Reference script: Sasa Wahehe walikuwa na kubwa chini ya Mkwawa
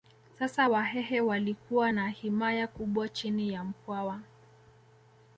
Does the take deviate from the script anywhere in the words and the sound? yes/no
yes